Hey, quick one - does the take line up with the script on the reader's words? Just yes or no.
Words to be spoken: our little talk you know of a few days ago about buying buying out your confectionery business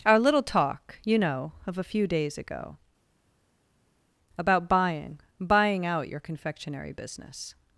yes